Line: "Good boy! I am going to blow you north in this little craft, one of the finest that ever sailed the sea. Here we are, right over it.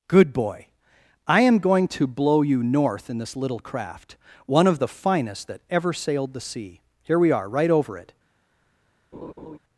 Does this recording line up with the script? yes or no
yes